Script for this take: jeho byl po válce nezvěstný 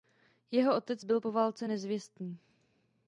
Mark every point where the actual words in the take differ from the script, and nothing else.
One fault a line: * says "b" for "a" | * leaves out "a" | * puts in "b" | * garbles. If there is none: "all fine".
* puts in "otec"